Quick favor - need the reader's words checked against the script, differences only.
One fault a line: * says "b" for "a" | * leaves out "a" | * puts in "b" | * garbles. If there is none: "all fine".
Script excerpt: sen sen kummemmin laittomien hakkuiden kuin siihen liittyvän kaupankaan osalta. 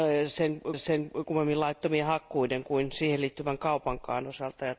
all fine